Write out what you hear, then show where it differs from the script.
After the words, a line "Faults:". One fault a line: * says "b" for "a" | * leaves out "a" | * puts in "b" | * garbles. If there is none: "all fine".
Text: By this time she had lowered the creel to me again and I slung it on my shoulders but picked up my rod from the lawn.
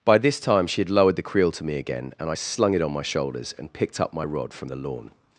By this time she had lowered the creel to me again and I slung it on my shoulders and picked up my rod from the lawn.
Faults:
* says "and" for "but"